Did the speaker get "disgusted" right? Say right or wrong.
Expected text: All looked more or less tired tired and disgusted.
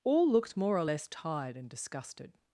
right